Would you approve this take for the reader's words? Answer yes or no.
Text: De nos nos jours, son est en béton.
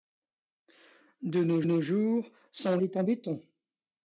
yes